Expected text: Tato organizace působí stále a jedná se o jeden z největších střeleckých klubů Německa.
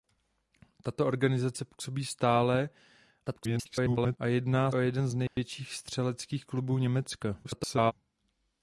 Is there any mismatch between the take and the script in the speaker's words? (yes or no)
yes